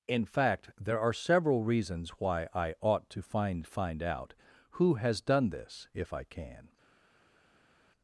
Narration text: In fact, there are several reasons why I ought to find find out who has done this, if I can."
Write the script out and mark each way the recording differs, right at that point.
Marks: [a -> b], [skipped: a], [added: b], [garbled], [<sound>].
In fact, there are several reasons why I ought to find find out who has done this, if I can."